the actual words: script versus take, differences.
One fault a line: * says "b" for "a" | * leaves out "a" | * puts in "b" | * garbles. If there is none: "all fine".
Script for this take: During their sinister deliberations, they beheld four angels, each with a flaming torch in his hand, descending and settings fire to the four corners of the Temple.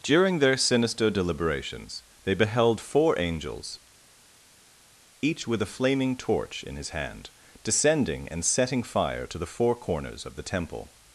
* says "setting" for "settings"